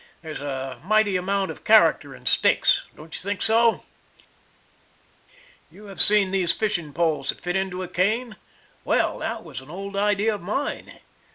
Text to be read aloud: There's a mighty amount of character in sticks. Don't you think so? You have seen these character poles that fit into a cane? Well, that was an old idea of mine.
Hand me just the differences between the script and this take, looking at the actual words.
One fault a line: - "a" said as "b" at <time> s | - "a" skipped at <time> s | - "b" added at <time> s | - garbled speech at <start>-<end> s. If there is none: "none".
- "character" said as "fishing" at 6.5 s